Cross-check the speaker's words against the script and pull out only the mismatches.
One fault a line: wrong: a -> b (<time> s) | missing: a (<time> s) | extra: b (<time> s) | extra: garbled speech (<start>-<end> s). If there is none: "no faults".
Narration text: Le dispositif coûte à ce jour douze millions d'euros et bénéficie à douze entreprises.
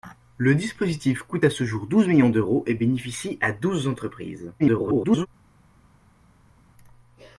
extra: garbled speech (4.6-5.3 s)